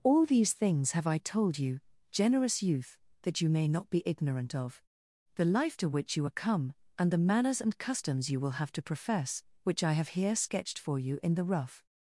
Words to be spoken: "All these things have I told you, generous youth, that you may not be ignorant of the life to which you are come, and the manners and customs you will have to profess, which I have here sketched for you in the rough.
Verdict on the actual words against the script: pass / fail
pass